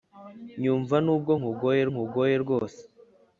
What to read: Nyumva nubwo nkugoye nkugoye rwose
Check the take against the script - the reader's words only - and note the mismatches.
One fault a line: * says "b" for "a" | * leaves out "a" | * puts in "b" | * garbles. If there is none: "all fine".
all fine